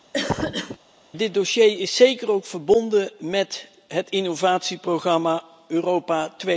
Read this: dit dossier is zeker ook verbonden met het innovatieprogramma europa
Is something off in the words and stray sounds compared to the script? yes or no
yes